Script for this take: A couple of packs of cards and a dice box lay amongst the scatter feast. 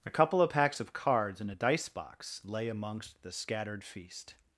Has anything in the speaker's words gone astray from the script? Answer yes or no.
yes